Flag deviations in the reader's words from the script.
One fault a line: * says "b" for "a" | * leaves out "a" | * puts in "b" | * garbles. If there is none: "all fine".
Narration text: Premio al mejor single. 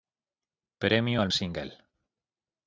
* leaves out "mejor"